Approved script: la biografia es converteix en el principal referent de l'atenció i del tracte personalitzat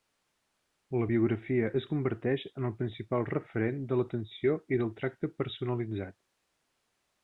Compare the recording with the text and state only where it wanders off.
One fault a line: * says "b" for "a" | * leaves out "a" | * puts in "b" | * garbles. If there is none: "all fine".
all fine